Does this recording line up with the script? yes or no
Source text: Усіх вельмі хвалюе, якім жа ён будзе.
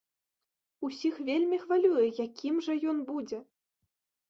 yes